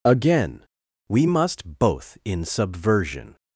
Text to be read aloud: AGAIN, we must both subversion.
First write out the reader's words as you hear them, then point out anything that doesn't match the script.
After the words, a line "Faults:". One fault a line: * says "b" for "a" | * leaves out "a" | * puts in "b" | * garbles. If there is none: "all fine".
AGAIN, we must both in subversion.
Faults:
* puts in "in"